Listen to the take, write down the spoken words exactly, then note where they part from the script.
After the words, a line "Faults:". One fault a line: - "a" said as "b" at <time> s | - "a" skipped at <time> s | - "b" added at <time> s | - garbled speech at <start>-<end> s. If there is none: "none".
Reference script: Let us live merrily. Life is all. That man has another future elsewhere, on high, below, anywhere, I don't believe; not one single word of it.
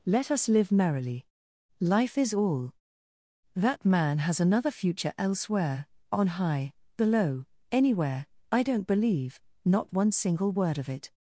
Let us live merrily. Life is all. That man has another future elsewhere, on high, below, anywhere, I don't believe; not one single word of it.
Faults:
none